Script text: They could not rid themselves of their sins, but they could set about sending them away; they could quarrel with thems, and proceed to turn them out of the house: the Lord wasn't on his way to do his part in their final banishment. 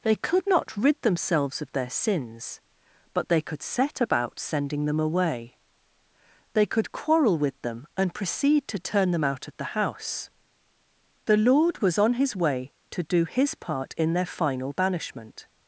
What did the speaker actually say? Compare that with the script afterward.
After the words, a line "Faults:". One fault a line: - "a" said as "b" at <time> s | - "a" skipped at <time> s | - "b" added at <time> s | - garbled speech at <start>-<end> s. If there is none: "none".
They could not rid themselves of their sins, but they could set about sending them away; they could quarrel with them, and proceed to turn them out of the house: the Lord was on his way to do his part in their final banishment.
Faults:
- "thems" said as "them" at 7.6 s
- "wasn't" said as "was" at 11.8 s